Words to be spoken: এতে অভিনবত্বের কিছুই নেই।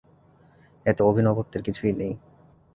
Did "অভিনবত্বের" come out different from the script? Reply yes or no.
no